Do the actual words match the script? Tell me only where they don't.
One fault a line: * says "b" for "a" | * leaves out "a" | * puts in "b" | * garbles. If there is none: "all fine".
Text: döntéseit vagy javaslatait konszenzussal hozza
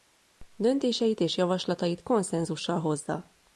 * says "és" for "vagy"